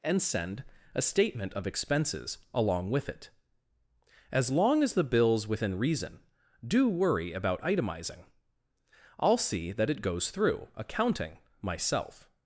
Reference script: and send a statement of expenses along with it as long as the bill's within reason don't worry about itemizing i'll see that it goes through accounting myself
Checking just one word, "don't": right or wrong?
wrong